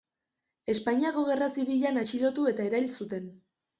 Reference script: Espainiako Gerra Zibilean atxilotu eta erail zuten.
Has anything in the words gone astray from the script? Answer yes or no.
no